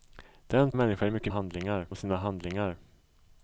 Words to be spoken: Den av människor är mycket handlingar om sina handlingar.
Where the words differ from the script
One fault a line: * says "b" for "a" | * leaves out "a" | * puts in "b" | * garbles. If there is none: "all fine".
all fine